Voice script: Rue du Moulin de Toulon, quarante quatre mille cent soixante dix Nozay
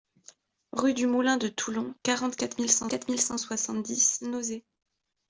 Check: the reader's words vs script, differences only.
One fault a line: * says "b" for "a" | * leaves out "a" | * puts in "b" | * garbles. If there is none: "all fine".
* puts in "quatre mille cent"